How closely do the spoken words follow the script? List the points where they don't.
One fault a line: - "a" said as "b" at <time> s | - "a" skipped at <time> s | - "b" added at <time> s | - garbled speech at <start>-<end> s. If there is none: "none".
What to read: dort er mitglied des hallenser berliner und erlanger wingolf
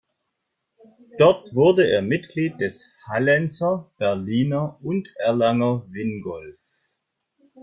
- "wurde" added at 1.5 s